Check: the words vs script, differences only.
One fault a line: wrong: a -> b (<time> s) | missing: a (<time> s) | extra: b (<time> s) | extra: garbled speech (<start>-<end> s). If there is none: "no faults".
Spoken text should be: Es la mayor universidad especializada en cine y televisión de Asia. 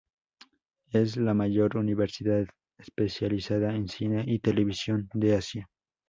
no faults